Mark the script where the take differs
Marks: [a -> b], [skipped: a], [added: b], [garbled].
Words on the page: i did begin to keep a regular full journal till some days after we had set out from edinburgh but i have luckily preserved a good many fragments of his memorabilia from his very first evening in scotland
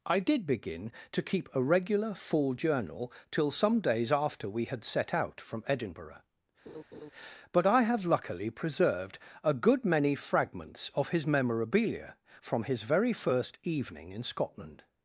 i did begin to keep a regular full journal till some days after we had set out from edinburgh but i have luckily preserved a good many fragments of his memorabilia from his very first evening in scotland